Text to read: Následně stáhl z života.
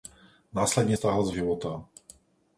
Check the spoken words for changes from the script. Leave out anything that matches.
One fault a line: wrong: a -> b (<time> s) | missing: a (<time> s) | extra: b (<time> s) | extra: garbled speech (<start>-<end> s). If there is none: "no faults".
no faults